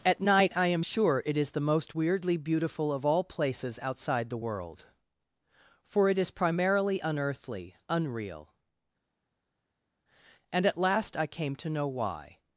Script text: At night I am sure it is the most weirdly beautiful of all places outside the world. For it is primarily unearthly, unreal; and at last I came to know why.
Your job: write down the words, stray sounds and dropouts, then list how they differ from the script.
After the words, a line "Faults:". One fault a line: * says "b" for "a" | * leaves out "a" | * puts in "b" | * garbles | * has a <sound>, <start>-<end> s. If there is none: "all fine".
At night I am sure it is the most weirdly beautiful of all places outside the world. For it is primarily unearthly, unreal; and at last I came to know why.
Faults:
all fine